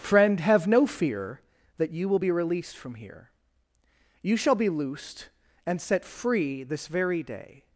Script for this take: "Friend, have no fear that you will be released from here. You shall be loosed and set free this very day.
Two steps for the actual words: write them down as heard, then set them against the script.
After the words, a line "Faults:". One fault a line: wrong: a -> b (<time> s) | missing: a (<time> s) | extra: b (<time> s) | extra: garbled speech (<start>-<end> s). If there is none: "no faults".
"Friend, have no fear that you will be released from here. You shall be loosed and set free this very day.
Faults:
no faults